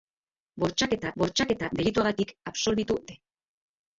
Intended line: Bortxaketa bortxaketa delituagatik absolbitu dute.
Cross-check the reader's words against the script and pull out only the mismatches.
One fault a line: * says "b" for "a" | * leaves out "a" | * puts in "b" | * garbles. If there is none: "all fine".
all fine